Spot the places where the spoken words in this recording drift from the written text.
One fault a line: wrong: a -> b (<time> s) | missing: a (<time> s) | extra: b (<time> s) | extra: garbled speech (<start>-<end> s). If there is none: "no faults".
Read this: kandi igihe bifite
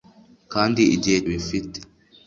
no faults